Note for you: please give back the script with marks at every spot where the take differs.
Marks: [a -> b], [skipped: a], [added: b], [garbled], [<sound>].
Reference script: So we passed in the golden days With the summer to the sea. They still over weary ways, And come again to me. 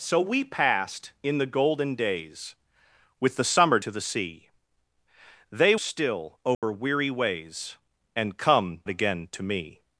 So we passed in the golden days With the summer to the sea. They still over [dropout] weary ways, And come again to me.